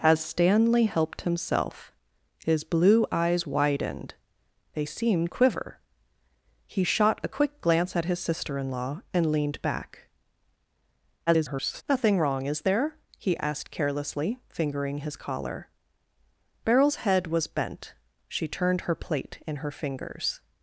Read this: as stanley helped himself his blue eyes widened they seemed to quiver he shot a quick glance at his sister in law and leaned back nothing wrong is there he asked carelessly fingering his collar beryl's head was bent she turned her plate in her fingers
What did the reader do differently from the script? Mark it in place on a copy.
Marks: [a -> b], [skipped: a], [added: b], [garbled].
as stanley helped himself his blue eyes widened they seemed [skipped: to] quiver he shot a quick glance at his sister in law and leaned back [garbled] nothing wrong is there he asked carelessly fingering his collar beryl's head was bent she turned her plate in her fingers